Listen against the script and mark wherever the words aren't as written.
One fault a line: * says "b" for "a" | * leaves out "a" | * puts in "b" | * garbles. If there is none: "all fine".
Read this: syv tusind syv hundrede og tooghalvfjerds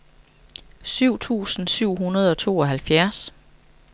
all fine